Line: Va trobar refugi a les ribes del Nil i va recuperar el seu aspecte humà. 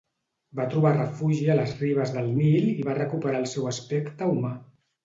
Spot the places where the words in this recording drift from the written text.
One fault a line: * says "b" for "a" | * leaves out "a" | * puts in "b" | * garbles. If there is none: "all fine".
all fine